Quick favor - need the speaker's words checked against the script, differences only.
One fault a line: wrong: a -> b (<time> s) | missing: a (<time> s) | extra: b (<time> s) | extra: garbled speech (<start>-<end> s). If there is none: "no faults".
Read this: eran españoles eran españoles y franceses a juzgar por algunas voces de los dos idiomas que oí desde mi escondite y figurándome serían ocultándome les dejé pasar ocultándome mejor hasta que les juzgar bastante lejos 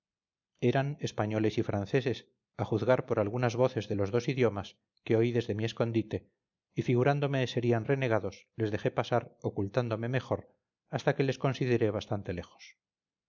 missing: eran españoles (1.6 s)
wrong: ocultándome -> renegados (7.8 s)
wrong: juzgar -> consideré (11.4 s)